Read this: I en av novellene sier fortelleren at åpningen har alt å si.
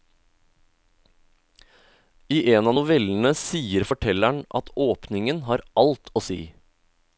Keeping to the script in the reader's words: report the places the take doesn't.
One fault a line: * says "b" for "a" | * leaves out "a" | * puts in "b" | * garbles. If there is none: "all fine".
all fine